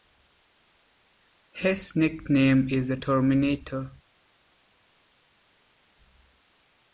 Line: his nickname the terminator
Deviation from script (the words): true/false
true